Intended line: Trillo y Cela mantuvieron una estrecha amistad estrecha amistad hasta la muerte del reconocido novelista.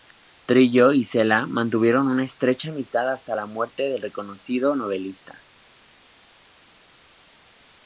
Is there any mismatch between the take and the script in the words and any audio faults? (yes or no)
yes